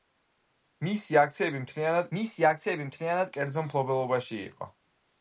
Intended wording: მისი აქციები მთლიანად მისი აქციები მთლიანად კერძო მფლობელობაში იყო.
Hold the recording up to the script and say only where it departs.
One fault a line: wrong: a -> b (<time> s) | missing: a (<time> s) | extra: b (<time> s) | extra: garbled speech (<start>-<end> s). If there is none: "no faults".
no faults